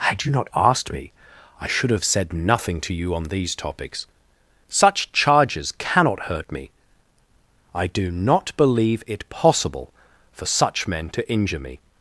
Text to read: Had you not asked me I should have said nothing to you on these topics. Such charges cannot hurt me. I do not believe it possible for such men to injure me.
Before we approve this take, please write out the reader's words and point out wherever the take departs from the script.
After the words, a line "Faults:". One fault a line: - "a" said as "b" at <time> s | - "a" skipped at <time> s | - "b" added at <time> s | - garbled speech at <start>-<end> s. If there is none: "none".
Had you not asked me I should have said nothing to you on these topics. Such charges cannot hurt me. I do not believe it possible for such men to injure me.
Faults:
none